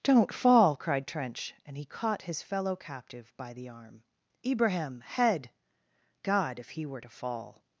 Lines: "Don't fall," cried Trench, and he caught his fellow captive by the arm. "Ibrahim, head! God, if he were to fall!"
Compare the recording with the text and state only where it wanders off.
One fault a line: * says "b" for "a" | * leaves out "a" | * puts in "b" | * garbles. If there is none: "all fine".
all fine